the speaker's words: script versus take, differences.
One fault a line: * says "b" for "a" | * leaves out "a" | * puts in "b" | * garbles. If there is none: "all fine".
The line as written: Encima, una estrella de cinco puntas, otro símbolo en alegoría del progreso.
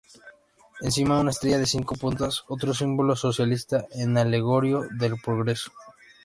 * puts in "socialista"